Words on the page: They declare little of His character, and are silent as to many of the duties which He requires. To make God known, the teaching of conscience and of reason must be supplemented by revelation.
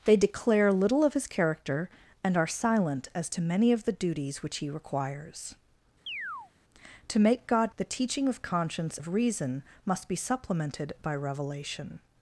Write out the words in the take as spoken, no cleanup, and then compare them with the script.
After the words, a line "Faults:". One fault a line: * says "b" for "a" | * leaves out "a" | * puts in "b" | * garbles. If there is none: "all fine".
They declare little of His character, and are silent as to many of the duties which He requires. To make God the teaching of conscience of reason must be supplemented by revelation.
Faults:
* leaves out "known"
* leaves out "and"